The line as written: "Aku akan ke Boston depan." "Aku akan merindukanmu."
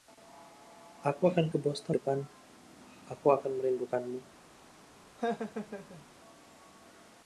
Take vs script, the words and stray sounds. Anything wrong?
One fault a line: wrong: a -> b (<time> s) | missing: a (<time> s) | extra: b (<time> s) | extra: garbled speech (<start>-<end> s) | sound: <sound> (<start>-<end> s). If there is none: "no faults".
sound: laugh (5.2-6.0 s)